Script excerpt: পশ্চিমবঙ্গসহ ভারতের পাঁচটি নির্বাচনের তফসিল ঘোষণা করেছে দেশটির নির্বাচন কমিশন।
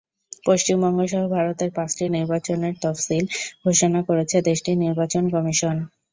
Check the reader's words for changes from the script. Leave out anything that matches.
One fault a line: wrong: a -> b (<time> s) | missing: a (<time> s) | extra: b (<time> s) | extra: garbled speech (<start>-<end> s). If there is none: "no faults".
no faults